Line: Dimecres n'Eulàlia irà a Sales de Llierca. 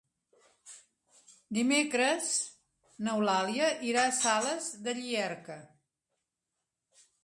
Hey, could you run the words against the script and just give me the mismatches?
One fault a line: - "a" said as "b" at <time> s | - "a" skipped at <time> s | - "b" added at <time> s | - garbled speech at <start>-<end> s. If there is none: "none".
none